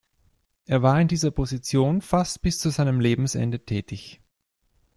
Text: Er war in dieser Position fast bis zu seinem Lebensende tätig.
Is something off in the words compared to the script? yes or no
no